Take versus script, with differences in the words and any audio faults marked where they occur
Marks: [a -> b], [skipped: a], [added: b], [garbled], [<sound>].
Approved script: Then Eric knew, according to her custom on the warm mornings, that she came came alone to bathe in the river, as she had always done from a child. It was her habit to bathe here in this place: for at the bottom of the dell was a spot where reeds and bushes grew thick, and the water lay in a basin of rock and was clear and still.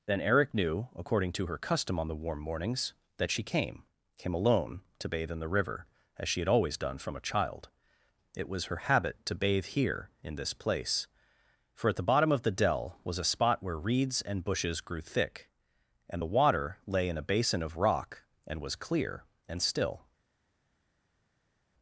Then Eric knew, according to her custom on the warm mornings, that she came came alone to bathe in the river, as she had always done from a child. It was her habit to bathe here in this place: for at the bottom of the dell was a spot where reeds and bushes grew thick, and the water lay in a basin of rock and was clear and still.